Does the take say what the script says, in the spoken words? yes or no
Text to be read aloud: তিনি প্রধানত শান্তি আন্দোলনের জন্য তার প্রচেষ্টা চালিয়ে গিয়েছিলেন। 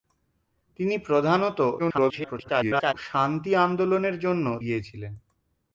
no